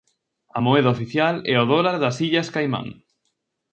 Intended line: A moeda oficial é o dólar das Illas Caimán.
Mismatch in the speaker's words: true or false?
false